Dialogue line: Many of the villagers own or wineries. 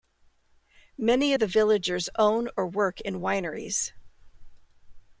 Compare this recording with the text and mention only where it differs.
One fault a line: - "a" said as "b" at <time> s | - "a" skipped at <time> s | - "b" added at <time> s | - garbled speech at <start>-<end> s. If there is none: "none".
- "work in" added at 2.7 s